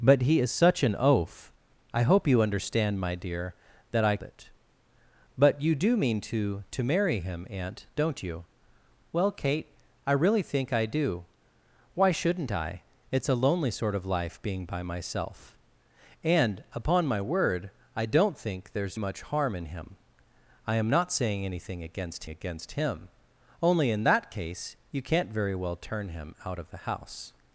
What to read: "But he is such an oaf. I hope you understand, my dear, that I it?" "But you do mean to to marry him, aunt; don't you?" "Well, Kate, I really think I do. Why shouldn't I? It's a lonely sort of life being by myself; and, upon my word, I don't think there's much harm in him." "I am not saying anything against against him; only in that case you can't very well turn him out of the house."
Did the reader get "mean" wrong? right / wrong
right